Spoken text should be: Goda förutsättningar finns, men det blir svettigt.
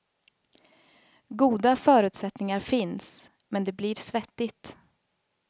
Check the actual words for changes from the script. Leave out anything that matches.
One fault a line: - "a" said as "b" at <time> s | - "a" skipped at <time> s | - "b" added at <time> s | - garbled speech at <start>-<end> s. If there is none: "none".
none